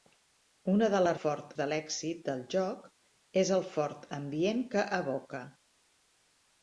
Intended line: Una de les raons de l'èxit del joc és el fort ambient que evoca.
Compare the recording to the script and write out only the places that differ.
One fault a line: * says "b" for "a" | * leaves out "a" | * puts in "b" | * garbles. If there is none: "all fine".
* says "fort" for "raons"